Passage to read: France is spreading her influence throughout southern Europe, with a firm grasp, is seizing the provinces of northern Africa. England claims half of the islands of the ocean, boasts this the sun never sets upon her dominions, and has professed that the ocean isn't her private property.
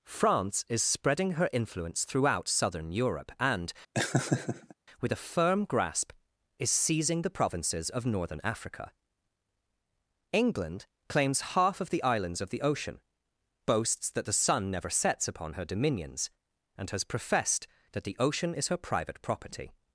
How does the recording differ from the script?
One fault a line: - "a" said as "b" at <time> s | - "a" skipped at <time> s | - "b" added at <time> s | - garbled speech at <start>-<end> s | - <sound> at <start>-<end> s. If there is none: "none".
- "and" added at 3.4 s
- laugh at 3.9-4.7 s
- "this" said as "that" at 14.1 s
- "isn't" said as "is" at 18.5 s